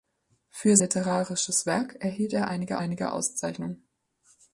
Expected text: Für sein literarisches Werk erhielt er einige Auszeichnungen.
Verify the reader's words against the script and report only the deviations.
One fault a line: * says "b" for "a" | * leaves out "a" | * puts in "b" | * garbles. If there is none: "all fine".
* leaves out "sein"
* puts in "einige"